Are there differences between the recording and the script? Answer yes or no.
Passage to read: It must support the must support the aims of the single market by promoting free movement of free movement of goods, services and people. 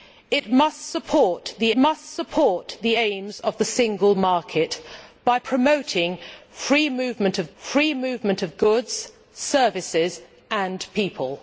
no